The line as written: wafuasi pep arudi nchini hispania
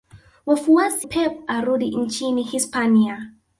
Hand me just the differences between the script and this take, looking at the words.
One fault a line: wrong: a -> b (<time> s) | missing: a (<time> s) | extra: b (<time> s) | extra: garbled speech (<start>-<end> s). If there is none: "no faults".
no faults